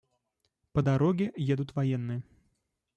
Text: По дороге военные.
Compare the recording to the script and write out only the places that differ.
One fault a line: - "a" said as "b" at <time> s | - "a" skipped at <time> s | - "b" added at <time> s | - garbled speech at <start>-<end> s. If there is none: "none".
- "едут" added at 1.4 s